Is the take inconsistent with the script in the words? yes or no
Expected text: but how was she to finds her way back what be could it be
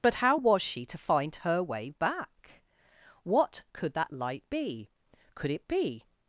yes